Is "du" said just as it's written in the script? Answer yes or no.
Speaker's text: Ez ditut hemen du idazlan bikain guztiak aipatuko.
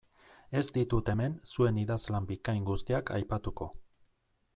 no